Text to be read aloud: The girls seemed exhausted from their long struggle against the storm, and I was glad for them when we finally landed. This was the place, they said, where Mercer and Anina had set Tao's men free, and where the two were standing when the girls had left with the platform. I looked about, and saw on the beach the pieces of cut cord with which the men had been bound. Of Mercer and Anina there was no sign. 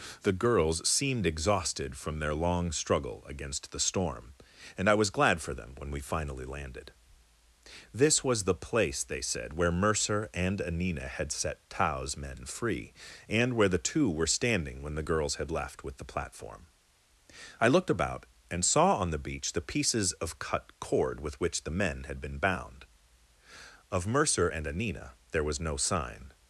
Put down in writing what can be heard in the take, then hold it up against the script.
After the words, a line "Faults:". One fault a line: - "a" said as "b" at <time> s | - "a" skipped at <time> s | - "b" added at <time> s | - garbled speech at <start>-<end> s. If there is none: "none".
The girls seemed exhausted from their long struggle against the storm, and I was glad for them when we finally landed. This was the place, they said, where Mercer and Anina had set Tao's men free, and where the two were standing when the girls had left with the platform. I looked about, and saw on the beach the pieces of cut cord with which the men had been bound. Of Mercer and Anina there was no sign.
Faults:
none